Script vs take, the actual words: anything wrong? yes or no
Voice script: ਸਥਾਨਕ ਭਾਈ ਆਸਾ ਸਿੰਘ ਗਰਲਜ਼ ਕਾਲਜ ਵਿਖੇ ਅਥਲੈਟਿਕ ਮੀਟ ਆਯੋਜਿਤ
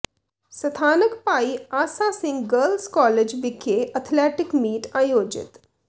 no